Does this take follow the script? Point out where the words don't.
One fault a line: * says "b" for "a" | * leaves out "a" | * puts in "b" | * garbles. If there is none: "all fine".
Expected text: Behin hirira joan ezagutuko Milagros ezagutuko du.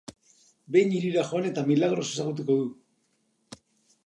* says "eta" for "ezagutuko"